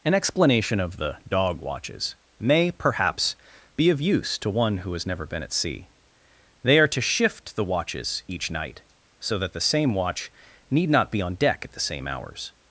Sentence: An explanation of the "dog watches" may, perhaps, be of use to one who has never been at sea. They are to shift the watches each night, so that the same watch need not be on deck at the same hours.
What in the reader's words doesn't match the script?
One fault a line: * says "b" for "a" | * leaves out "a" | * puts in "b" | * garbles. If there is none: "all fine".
all fine